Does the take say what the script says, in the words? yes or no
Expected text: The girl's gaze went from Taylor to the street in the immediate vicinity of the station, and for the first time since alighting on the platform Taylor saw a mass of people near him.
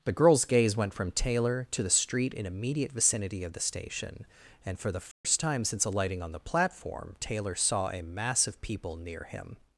no